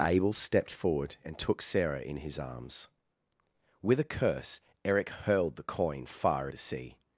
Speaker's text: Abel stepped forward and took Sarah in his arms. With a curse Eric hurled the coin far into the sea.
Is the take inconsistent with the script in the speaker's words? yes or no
yes